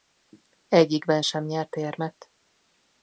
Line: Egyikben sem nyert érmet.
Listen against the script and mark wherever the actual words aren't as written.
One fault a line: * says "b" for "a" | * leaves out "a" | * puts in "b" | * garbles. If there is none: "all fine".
all fine